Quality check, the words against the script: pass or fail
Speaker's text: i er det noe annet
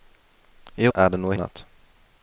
pass